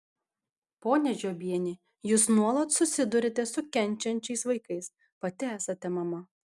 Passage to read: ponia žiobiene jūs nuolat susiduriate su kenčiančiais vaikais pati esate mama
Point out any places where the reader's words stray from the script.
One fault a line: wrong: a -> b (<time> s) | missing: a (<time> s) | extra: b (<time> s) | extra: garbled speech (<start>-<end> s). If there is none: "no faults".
no faults